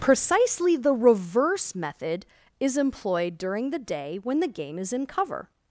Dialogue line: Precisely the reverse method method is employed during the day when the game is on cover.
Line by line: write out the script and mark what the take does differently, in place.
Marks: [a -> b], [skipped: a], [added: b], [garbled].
Precisely the reverse method [skipped: method] is employed during the day when the game is [on -> in] cover.